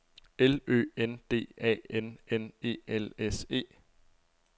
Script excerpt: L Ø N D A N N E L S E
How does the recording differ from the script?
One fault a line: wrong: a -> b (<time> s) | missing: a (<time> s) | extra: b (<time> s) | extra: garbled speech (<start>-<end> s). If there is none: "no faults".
no faults